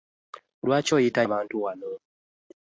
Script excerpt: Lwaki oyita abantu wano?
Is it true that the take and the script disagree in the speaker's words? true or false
false